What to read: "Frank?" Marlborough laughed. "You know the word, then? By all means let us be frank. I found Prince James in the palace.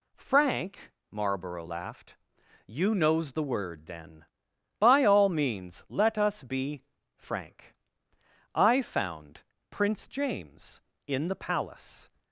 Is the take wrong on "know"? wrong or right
wrong